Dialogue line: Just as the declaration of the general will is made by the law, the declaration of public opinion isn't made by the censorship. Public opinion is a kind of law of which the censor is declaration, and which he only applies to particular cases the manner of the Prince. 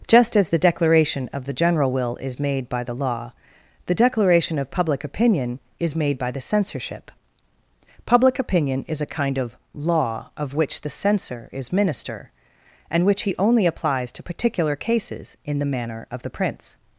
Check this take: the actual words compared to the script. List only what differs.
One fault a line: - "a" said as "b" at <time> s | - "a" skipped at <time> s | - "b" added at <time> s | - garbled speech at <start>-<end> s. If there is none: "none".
- "isn't" said as "is" at 5.8 s
- "declaration" said as "minister" at 11.7 s
- "in" added at 15.5 s